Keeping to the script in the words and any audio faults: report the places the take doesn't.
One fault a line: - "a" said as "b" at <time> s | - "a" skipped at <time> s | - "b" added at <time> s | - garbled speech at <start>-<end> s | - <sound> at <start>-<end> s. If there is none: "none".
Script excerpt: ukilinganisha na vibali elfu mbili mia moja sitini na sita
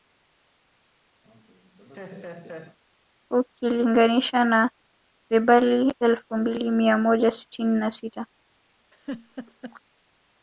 - laugh at 1.2-2.8 s
- laugh at 8.9-9.8 s